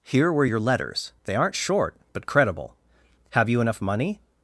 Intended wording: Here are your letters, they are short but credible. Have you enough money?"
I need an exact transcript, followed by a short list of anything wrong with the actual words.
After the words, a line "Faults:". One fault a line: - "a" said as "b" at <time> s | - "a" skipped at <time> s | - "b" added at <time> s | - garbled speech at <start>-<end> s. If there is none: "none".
Here were your letters, they aren't short but credible. Have you enough money?"
Faults:
- "are" said as "were" at 0.3 s
- "are" said as "aren't" at 1.4 s